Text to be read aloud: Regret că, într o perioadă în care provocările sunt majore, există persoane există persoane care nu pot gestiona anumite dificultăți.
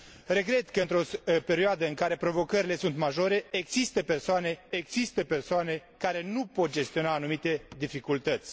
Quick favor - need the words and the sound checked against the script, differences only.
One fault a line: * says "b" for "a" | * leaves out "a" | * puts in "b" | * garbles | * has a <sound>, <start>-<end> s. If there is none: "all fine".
all fine